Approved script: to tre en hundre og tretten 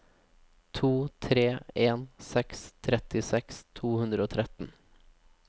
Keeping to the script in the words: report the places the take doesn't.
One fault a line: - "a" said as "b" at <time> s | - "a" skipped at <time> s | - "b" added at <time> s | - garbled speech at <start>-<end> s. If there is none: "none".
- "seks trettiseks to" added at 2.3 s